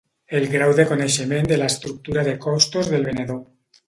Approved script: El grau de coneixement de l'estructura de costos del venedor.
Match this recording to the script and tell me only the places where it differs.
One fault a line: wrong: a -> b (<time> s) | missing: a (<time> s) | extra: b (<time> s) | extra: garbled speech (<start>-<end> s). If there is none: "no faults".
no faults